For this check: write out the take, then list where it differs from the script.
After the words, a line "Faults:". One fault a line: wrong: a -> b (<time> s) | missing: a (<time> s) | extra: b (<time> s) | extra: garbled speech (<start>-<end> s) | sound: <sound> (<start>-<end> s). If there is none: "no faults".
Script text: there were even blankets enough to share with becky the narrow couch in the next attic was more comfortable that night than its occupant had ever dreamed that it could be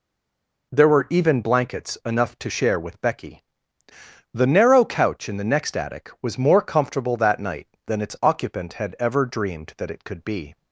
there were even blankets enough to share with becky the narrow couch in the next attic was more comfortable that night than its occupant had ever dreamed that it could be
Faults:
no faults